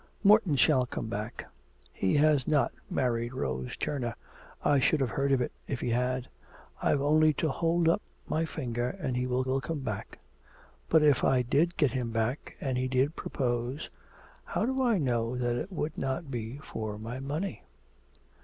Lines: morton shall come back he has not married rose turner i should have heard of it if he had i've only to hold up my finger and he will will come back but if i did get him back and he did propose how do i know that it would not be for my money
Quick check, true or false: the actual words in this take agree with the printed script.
true